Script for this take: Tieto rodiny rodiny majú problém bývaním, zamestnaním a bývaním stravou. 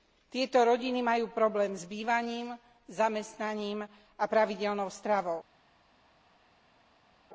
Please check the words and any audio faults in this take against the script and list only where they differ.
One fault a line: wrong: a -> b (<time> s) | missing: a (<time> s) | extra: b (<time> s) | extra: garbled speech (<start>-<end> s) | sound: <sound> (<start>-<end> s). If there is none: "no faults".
missing: rodiny (1.0 s)
extra: s (1.7 s)
wrong: bývaním -> pravidelnou (4.2 s)